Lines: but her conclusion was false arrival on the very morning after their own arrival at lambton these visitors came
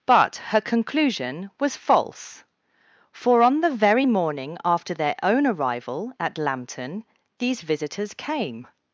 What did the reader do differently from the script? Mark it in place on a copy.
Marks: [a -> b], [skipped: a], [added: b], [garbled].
but her conclusion was false [arrival -> for] on the very morning after their own arrival at lambton these visitors came